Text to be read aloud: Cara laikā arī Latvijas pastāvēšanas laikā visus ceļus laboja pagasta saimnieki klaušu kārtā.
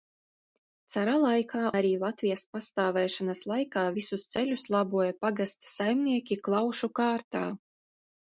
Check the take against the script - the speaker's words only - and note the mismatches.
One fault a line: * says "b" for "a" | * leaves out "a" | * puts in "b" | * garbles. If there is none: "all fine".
all fine